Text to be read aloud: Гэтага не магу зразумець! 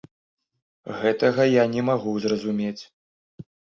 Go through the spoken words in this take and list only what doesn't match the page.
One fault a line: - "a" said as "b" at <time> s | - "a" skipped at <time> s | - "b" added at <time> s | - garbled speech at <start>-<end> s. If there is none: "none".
- "я" added at 1.5 s